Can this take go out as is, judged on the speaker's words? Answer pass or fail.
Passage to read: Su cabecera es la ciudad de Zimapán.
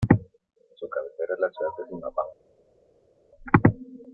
pass